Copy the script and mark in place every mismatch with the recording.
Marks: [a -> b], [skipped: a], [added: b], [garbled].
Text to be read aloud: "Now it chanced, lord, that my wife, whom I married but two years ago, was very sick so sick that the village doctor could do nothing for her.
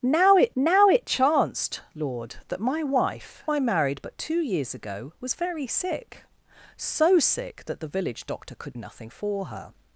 "Now it [added: now it] chanced, lord, that my wife, [skipped: whom] I married but two years ago, was very sick so sick that the village doctor could [skipped: do] nothing for her.